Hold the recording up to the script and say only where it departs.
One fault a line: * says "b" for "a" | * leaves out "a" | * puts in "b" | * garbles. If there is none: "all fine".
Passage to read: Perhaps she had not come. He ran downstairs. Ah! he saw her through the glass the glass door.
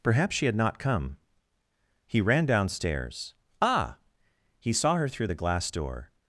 * leaves out "the glass"